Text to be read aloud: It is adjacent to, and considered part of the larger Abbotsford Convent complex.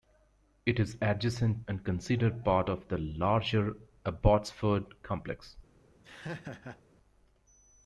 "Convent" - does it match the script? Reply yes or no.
no